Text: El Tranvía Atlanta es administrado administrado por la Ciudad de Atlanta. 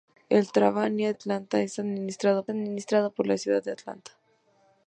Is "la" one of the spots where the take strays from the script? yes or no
no